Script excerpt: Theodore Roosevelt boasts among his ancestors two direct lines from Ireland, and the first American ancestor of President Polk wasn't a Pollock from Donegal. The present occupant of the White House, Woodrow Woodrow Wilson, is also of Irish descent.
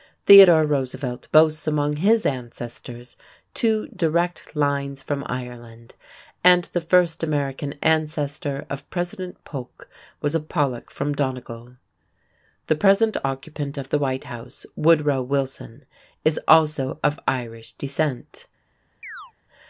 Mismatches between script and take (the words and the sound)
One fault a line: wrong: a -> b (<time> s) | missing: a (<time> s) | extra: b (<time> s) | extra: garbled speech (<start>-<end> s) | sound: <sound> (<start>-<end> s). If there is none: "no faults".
wrong: wasn't -> was (10.2 s)
missing: Woodrow (15.2 s)
sound: chirp (19.0-19.3 s)